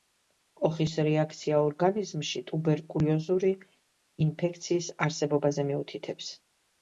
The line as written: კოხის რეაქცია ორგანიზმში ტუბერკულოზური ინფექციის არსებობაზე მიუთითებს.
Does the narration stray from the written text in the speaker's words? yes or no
no